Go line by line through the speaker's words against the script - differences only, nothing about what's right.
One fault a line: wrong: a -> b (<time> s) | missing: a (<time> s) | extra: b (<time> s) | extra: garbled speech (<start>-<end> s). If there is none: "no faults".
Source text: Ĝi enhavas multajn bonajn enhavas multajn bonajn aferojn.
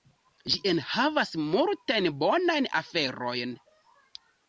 missing: enhavas multajn bonajn (2.7 s)